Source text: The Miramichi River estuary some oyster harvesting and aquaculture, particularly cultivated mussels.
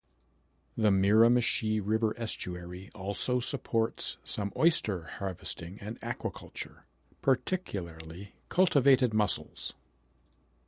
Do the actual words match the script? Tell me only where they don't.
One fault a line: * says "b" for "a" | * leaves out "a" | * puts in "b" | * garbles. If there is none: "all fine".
* puts in "also supports"